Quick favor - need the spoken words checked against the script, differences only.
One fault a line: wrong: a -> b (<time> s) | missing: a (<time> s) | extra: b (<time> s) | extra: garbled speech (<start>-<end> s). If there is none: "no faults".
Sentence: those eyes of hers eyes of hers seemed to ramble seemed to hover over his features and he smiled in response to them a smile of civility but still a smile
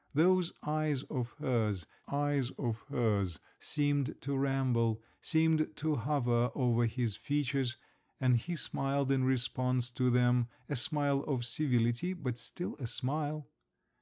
no faults